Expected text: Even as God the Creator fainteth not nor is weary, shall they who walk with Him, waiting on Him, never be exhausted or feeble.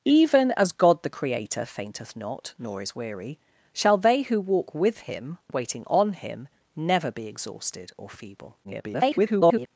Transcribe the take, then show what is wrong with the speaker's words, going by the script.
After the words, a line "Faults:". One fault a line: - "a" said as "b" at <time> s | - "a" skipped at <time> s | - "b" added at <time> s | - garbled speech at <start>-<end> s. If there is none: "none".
Even as God the Creator fainteth not nor is weary, shall they who walk with Him, waiting on Him, never be exhausted or feeble. [garbled]
Faults:
- garbled speech at 8.6-9.7 s